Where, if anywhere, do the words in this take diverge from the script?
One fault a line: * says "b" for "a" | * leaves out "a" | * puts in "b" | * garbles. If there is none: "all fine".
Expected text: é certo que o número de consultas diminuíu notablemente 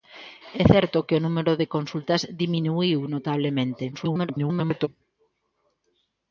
* garbles